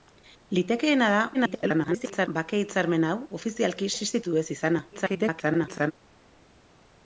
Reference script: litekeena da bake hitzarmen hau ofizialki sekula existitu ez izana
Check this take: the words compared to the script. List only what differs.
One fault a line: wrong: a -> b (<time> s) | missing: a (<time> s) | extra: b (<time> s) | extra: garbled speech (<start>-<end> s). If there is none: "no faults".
extra: garbled speech (1.3-2.3 s)
missing: sekula (3.9 s)
extra: garbled speech (4.9-5.9 s)